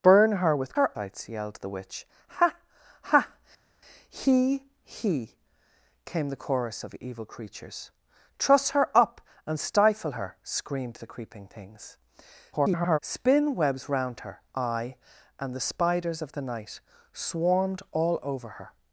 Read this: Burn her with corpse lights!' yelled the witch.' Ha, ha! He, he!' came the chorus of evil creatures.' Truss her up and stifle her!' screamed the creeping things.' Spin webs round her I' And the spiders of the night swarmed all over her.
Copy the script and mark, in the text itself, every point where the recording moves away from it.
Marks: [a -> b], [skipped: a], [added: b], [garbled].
Burn her with [corpse -> her] lights!' yelled the witch.' Ha, ha! He, he!' came the chorus of evil creatures.' Truss her up and stifle her!' screamed the creeping things.' [garbled] Spin webs round her I' And the spiders of the night swarmed all over her.